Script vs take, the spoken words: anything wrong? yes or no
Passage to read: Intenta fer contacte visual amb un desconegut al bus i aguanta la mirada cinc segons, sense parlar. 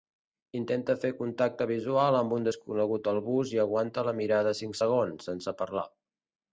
no